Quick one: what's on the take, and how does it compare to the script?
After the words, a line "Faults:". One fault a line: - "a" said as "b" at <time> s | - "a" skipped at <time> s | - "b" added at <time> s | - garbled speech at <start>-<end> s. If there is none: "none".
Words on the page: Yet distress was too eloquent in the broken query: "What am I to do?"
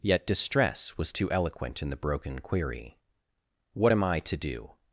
Yet distress was too eloquent in the broken query: "What am I to do?"
Faults:
none